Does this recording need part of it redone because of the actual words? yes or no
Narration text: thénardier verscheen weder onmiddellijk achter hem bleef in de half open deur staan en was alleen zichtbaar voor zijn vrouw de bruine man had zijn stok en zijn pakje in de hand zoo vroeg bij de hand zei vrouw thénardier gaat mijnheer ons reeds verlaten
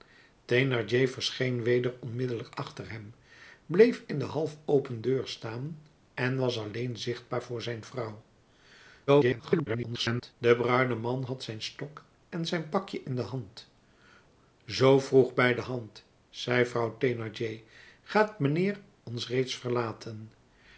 yes